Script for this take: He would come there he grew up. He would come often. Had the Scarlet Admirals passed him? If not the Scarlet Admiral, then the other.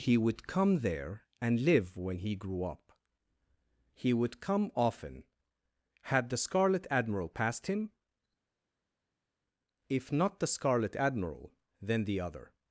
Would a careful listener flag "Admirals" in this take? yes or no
yes